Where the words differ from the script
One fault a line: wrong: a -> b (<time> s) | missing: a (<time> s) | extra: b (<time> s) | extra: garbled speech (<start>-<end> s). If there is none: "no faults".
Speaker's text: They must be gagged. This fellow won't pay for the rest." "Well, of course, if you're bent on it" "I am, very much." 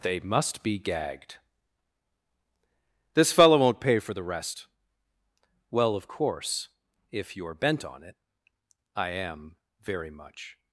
no faults